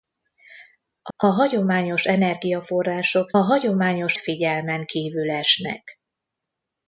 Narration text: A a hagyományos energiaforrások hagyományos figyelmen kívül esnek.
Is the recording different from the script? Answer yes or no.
no